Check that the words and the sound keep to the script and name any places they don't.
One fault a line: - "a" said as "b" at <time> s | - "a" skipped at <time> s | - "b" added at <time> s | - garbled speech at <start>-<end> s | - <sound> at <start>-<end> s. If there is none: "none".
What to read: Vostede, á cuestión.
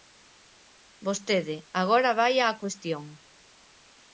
- "agora vaia" added at 1.8 s